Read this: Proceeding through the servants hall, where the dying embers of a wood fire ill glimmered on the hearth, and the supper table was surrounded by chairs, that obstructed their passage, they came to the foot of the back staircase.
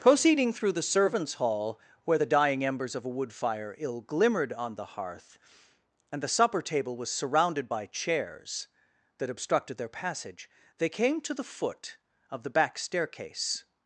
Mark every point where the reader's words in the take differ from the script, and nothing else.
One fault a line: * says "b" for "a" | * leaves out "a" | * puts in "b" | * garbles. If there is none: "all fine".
all fine